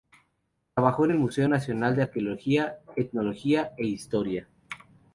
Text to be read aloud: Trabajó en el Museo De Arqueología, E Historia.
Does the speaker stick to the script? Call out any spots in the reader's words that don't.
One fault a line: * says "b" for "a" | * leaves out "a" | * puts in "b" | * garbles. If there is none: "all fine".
* puts in "Nacional"
* puts in "Etnología"